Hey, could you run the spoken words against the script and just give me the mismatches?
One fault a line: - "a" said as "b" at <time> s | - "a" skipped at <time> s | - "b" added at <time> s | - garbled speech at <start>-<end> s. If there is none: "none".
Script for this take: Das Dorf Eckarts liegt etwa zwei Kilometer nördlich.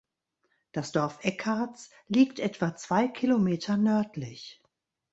none